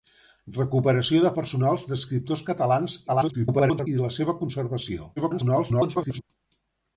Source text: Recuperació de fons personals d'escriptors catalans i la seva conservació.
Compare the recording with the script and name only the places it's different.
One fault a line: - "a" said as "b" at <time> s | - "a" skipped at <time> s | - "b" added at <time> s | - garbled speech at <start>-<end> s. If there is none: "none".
- "fons" skipped at 1.3 s
- garbled speech at 3.1-3.9 s
- garbled speech at 5.2-6.2 s